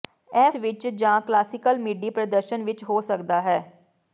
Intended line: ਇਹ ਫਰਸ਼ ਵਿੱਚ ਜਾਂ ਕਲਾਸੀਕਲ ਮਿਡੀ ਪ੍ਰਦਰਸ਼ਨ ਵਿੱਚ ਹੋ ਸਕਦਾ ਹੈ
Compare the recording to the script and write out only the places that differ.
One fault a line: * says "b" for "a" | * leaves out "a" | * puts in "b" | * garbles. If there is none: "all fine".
* leaves out "ਫਰਸ਼"